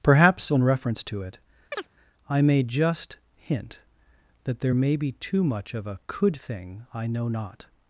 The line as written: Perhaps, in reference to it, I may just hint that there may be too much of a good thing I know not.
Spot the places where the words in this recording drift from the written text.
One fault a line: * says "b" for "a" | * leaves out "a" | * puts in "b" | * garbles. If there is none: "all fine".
* says "could" for "good"